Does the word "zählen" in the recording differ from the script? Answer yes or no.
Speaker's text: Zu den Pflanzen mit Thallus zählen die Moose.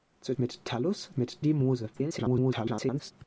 yes